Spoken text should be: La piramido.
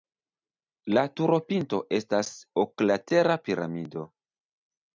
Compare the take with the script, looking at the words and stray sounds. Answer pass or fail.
fail